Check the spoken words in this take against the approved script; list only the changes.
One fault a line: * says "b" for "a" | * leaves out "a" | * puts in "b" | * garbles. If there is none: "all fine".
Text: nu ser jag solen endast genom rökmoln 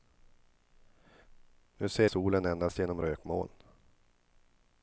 * leaves out "jag"